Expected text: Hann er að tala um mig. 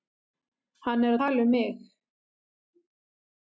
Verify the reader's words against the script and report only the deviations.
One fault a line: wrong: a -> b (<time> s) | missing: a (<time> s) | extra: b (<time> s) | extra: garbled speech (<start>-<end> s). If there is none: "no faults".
missing: að (1.2 s)